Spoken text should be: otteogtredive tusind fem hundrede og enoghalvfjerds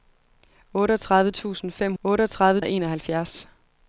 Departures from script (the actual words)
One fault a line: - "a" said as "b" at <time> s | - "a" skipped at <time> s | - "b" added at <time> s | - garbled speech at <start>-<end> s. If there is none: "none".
- "hundrede" said as "otteogtredive" at 2.0 s